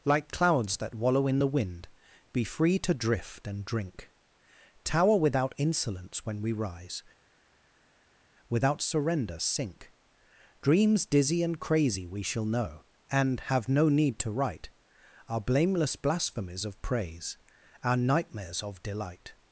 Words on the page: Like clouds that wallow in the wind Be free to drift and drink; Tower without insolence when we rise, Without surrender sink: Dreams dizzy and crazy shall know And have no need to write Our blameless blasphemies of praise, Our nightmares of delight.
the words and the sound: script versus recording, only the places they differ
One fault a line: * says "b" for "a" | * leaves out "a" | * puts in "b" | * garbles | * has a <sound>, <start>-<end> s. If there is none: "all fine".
* puts in "we"